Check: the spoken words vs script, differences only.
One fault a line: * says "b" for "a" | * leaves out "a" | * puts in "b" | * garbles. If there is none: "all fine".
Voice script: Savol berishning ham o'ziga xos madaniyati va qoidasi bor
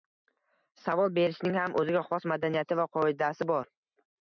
all fine